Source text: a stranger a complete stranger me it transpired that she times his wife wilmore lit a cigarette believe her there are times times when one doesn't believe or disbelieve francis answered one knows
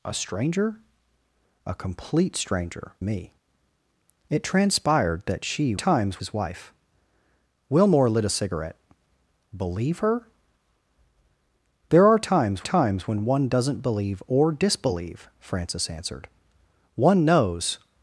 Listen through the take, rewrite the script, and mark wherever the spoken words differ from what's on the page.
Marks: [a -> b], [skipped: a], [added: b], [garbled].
a stranger a complete stranger me it transpired that she times his wife wilmore lit a cigarette believe her there are times times when one doesn't believe or disbelieve francis answered one knows